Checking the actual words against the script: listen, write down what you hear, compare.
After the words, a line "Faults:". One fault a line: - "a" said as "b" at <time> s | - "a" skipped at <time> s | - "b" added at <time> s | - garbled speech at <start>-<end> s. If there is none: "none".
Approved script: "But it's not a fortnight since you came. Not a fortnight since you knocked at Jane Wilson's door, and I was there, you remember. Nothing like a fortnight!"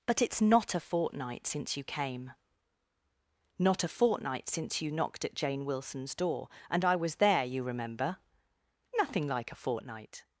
"But it's not a fortnight since you came. Not a fortnight since you knocked at Jane Wilson's door, and I was there, you remember. Nothing like a fortnight!"
Faults:
none